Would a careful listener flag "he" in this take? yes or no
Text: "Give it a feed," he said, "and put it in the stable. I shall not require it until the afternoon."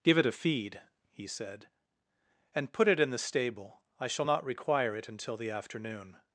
no